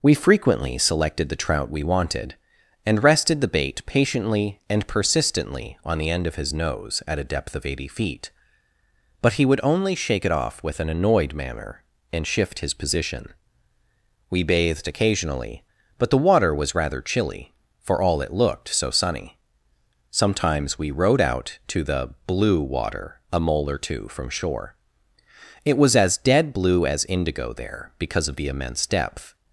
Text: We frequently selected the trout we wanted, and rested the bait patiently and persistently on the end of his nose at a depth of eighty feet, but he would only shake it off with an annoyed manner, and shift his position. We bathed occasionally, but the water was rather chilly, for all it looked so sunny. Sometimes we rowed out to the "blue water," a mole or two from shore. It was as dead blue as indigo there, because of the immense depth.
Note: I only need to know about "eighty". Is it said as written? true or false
true